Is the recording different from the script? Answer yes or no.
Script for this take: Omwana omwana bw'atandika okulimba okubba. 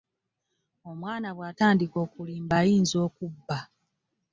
yes